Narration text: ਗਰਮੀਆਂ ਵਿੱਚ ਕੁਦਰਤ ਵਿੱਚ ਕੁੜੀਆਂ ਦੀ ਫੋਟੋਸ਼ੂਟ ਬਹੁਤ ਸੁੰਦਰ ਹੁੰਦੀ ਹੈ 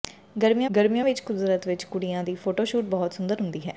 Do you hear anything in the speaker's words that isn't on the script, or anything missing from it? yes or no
yes